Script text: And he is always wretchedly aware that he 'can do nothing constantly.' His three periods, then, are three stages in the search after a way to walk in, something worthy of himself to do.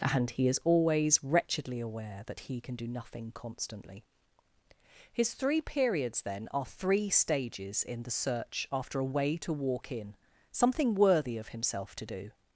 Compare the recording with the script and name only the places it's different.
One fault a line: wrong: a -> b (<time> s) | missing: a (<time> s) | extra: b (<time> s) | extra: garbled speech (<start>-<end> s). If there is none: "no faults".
no faults